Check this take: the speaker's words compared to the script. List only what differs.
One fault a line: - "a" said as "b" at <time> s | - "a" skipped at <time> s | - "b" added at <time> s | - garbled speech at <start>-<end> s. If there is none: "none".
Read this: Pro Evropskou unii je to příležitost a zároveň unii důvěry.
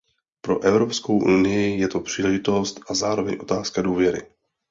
- "unii" said as "otázka" at 3.4 s